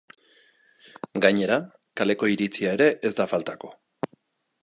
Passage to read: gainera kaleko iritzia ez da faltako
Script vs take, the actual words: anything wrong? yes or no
yes